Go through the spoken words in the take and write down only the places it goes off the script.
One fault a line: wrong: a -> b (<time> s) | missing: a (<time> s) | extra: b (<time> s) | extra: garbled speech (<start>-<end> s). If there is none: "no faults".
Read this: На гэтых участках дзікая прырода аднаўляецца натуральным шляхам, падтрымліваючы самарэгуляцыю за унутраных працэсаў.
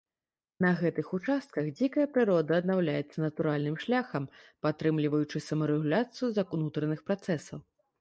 no faults